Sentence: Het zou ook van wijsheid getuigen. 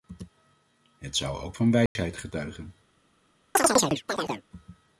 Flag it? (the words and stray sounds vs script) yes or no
yes